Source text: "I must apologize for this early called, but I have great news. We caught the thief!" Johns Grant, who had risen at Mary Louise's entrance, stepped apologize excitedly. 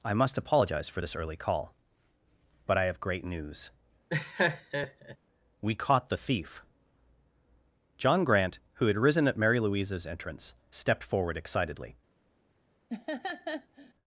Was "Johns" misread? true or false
true